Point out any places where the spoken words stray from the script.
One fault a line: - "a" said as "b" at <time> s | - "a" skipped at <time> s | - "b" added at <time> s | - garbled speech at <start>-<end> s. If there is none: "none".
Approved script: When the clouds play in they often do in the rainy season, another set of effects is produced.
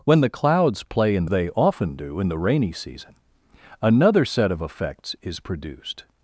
none